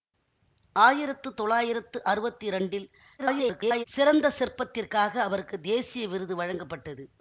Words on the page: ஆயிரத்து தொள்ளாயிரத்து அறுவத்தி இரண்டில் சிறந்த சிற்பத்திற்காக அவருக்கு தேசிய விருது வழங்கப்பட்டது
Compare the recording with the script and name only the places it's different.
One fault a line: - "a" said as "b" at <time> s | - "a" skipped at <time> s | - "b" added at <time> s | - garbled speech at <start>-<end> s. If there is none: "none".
- garbled speech at 3.2-3.8 s